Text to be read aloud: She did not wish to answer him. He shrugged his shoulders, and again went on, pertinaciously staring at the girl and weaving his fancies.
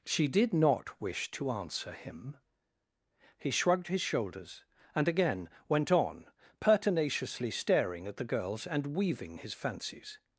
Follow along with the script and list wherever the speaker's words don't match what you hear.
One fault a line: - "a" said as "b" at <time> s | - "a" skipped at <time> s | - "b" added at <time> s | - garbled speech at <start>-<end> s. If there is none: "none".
- "girl" said as "girls" at 8.2 s